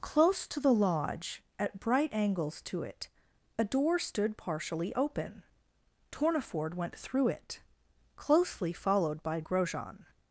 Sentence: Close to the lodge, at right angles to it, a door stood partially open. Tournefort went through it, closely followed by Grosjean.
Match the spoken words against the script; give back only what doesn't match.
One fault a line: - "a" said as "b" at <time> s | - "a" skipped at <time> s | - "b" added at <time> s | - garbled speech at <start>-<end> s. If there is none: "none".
- "right" said as "bright" at 1.8 s